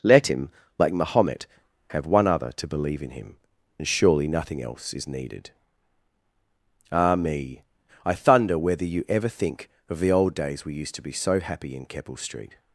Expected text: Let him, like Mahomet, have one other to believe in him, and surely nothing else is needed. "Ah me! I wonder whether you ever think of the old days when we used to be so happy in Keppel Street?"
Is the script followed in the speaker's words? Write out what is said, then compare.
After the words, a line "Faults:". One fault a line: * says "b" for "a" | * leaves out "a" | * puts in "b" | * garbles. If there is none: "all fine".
Let him, like Mahomet, have one other to believe in him, and surely nothing else is needed. "Ah me! I thunder whether you ever think of the old days we used to be so happy in Keppel Street?"
Faults:
* says "thunder" for "wonder"
* leaves out "when"